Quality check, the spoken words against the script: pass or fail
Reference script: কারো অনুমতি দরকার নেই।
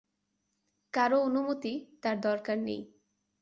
fail